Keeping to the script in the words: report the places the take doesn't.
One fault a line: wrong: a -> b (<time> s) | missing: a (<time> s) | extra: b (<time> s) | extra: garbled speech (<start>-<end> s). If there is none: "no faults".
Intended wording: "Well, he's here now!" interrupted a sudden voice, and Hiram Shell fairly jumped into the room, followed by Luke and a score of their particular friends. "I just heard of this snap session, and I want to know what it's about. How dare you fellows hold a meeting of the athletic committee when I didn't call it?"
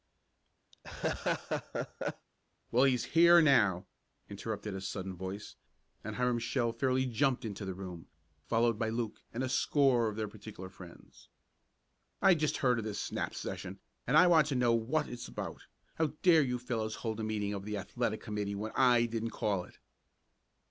no faults